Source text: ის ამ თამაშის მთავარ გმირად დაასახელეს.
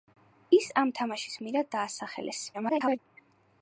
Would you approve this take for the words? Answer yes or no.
no